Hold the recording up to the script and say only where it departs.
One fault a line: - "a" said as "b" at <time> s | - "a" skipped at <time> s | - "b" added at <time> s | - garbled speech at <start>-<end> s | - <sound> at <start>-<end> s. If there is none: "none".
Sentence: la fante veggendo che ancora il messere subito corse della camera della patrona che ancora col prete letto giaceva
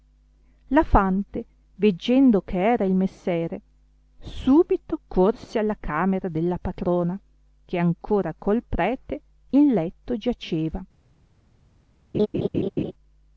- "ancora" said as "era" at 2.6 s
- "della" said as "alla" at 5.6 s
- "in" added at 9.5 s
- laugh at 12.1-12.9 s